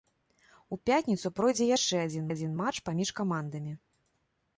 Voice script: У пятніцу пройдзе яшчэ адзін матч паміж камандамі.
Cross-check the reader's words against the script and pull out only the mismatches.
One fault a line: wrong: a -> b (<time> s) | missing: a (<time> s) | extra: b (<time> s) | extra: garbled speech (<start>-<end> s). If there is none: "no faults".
extra: адзін (2.3 s)